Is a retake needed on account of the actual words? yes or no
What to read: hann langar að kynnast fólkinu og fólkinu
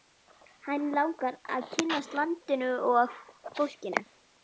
yes